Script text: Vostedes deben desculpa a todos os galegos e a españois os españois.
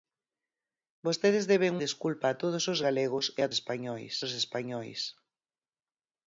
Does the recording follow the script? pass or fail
pass